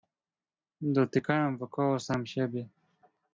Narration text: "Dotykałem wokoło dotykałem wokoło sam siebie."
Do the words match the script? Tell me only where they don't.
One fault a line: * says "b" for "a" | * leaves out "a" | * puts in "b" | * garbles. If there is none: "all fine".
* leaves out "dotykałem wokoło"